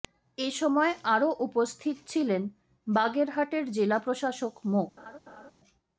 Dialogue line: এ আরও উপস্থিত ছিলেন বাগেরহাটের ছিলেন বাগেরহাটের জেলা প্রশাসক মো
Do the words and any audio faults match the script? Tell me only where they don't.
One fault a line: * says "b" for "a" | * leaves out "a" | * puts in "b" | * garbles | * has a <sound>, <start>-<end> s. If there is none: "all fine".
* puts in "সময়"
* leaves out "ছিলেন বাগেরহাটের"
* has a laugh, 5.0-5.5 s